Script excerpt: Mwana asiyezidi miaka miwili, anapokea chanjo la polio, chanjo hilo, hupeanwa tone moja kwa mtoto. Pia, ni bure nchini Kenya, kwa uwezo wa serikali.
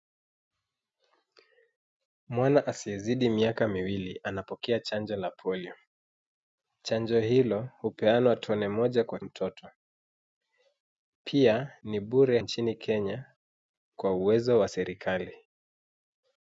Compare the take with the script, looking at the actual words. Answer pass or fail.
pass